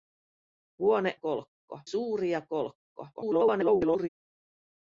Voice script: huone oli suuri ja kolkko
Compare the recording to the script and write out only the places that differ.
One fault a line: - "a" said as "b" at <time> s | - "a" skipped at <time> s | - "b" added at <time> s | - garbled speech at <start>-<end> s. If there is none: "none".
- "oli" said as "kolkko" at 1.1 s
- garbled speech at 3.1-4.1 s